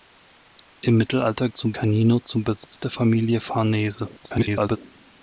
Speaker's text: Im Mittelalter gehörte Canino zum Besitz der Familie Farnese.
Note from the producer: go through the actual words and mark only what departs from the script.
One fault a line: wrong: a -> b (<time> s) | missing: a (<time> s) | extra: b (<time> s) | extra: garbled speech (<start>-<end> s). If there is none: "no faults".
wrong: gehörte -> zum (1.5 s)
extra: garbled speech (4.2-4.8 s)